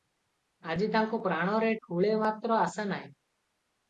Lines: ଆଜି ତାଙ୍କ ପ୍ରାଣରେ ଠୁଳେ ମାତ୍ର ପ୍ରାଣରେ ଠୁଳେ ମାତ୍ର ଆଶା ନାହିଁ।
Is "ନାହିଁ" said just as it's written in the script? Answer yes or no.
yes